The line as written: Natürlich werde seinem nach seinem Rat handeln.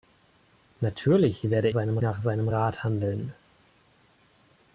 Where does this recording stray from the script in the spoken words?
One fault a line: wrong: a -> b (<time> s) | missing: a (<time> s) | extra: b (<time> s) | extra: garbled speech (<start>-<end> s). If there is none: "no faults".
no faults